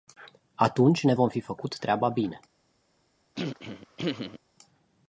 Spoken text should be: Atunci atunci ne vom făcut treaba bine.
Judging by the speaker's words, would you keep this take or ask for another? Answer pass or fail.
fail